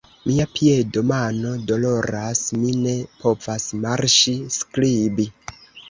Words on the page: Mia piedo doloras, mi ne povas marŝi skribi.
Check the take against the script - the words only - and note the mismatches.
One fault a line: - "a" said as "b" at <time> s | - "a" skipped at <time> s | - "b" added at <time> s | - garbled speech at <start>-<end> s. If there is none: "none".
- "mano" added at 1.1 s